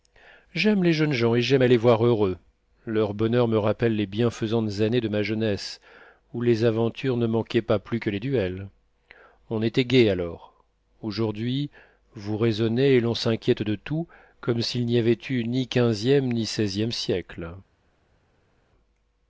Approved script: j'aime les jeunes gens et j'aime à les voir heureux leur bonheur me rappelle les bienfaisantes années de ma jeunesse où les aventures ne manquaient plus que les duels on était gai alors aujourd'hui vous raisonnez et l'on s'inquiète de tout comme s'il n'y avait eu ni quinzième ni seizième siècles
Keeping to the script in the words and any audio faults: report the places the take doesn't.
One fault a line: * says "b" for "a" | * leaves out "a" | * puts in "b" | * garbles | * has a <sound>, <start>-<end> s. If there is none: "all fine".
* puts in "pas"